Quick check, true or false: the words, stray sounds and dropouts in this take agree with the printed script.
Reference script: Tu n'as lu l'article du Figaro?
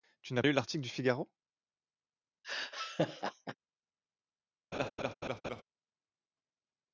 false